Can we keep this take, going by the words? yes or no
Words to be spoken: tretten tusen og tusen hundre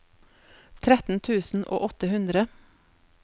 no